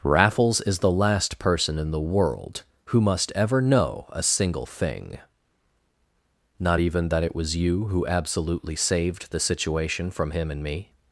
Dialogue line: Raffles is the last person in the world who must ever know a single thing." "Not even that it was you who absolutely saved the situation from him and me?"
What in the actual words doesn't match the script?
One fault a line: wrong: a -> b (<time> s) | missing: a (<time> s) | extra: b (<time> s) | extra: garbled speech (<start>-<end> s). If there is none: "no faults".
no faults